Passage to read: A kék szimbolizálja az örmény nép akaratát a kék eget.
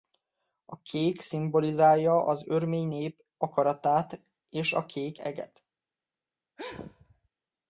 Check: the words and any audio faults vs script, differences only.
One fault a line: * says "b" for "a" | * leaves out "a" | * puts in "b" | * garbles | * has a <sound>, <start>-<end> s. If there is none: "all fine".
* puts in "és"
* has a sneeze, 6.6-7.3 s